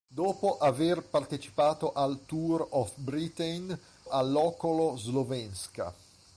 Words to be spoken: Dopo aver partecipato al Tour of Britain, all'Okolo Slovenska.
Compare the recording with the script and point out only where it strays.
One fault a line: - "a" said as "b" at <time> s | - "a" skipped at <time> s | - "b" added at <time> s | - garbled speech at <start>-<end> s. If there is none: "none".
none